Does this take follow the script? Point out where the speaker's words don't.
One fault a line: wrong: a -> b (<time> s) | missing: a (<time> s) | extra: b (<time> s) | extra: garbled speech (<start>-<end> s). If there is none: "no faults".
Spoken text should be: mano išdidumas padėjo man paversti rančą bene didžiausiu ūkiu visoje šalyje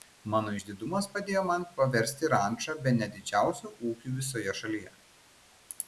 no faults